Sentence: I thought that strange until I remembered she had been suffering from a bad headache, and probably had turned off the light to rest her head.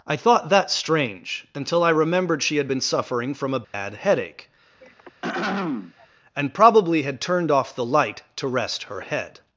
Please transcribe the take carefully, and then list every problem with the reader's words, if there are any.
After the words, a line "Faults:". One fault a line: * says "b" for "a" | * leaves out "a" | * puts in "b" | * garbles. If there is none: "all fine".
I thought that strange until I remembered she had been suffering from a bad headache, and probably had turned off the light to rest her head.
Faults:
all fine